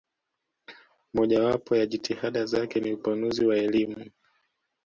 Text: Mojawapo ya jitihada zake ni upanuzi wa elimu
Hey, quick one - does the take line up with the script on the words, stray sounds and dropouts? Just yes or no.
yes